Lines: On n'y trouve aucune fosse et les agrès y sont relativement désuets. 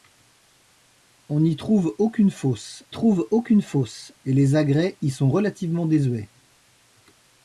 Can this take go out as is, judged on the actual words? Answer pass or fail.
fail